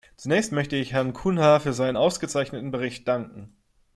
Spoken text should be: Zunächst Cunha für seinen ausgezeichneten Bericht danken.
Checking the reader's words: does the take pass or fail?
fail